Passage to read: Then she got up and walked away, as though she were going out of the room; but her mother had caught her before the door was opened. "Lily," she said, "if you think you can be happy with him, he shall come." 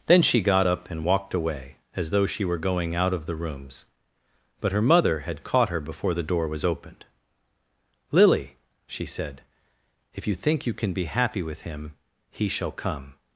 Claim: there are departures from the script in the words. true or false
true